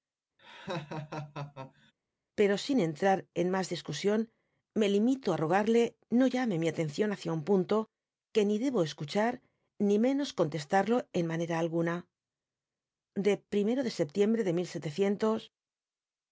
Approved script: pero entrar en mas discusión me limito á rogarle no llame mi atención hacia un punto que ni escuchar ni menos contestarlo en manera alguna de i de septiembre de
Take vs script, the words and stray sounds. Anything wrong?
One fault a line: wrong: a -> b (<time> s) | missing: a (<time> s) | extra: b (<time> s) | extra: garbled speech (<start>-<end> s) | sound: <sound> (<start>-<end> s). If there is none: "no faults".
sound: laugh (0.4-1.9 s)
extra: sin (2.6 s)
extra: debo (8.6 s)